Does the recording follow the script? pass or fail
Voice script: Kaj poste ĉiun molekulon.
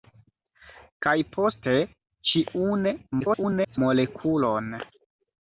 fail